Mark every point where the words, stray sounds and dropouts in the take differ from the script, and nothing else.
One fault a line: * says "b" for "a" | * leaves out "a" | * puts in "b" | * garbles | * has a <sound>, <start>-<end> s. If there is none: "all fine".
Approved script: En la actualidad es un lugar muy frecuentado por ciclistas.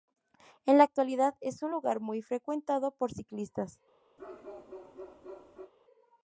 * has a bark, 4.2-5.7 s